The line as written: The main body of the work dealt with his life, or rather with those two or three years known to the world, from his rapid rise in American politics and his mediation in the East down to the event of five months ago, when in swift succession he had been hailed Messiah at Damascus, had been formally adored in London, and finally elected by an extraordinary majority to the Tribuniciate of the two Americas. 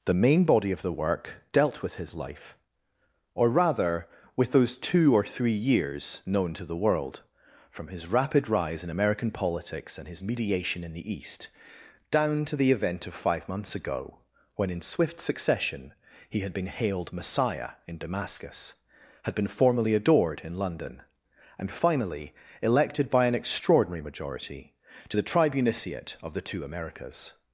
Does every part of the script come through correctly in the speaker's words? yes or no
no